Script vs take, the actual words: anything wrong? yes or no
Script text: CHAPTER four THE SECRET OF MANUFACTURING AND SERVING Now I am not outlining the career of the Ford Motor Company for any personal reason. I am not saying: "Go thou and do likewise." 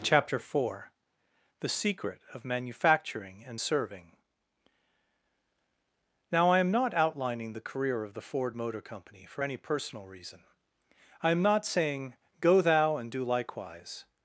no